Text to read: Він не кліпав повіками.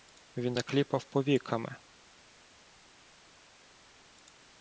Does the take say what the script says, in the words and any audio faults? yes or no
yes